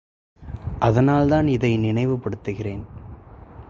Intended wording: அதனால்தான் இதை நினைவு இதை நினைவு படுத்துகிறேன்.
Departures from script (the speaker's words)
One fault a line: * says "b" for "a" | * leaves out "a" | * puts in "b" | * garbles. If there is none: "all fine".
* leaves out "இதை நினைவு"